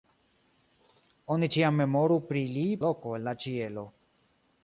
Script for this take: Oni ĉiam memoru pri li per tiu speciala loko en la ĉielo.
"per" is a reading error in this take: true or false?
true